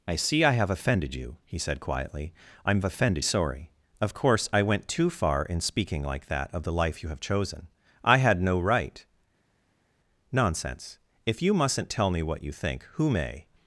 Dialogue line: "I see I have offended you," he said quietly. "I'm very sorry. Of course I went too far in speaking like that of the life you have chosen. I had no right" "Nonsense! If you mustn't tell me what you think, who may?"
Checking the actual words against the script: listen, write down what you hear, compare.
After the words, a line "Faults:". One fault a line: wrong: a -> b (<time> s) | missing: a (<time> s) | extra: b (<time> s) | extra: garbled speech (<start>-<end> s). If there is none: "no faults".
"I see I have offended you," he said quietly. "I'm offended sorry. Of course I went too far in speaking like that of the life you have chosen. I had no right" "Nonsense! If you mustn't tell me what you think, who may?"
Faults:
wrong: very -> offended (2.9 s)